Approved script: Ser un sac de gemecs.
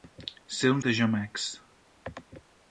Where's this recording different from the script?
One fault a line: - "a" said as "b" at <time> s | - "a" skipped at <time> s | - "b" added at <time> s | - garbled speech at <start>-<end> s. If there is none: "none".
- "sac" skipped at 0.8 s